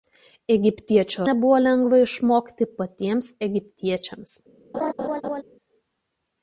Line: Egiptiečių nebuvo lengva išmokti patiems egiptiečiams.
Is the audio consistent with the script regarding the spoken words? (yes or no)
yes